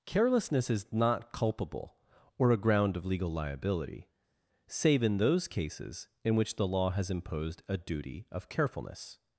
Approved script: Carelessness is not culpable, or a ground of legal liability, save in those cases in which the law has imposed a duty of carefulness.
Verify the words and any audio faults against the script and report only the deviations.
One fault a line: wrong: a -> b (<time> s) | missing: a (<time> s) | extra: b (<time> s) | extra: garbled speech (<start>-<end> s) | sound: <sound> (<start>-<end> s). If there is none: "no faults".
no faults